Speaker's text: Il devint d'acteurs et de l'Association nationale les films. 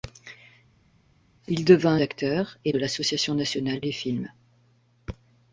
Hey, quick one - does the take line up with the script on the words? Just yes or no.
yes